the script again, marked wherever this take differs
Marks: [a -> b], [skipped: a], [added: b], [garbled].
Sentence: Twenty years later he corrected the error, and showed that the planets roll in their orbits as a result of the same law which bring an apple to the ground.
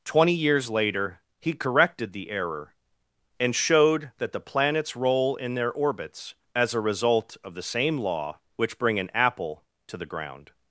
Twenty years later he corrected the error, and showed that the planets roll in their orbits as a result of the same law which bring an apple to the ground.